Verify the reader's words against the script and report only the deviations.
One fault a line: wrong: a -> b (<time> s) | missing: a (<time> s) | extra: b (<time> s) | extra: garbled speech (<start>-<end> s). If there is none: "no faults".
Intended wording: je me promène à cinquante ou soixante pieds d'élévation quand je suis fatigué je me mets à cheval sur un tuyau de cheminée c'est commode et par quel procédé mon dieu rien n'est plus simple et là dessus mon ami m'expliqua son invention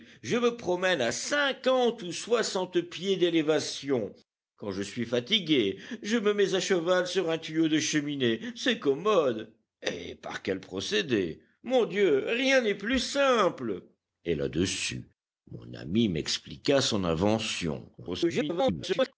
extra: garbled speech (18.0-19.1 s)